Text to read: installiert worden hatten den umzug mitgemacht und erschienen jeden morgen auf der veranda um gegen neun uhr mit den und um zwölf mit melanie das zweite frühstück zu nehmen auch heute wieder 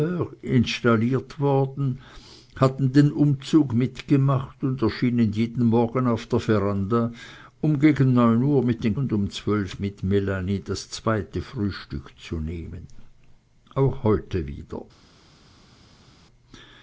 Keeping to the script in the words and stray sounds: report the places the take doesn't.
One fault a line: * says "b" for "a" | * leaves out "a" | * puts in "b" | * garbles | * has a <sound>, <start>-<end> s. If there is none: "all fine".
all fine